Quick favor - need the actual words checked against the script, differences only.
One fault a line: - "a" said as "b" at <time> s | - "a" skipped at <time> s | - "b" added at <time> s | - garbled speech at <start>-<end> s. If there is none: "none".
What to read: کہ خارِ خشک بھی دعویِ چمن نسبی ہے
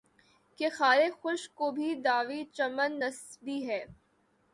- "کو" added at 1.6 s